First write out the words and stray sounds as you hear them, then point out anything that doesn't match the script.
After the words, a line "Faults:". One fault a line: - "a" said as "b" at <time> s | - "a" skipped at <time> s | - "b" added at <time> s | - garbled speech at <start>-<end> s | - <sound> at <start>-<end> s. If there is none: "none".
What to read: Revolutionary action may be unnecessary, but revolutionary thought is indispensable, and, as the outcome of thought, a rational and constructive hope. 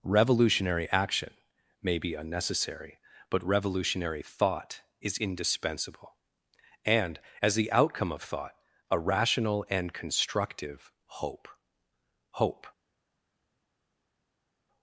Revolutionary action may be unnecessary, but revolutionary thought is indispensable, and, as the outcome of thought, a rational and constructive hope hope.
Faults:
- "hope" added at 12.3 s